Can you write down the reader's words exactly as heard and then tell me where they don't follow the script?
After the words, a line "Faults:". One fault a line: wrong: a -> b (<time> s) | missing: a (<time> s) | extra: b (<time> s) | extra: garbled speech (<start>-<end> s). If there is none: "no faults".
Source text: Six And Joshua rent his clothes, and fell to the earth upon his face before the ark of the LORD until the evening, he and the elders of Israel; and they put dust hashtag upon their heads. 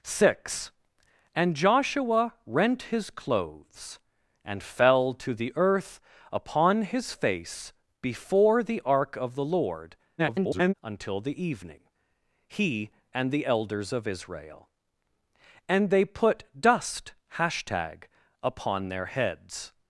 Six And Joshua rent his clothes, and fell to the earth upon his face before the ark of the LORD [garbled] until the evening, he and the elders of Israel; and they put dust hashtag upon their heads.
Faults:
extra: garbled speech (10.2-10.7 s)